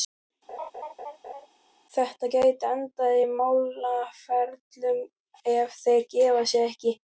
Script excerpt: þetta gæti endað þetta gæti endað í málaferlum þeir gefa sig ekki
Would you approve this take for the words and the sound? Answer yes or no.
no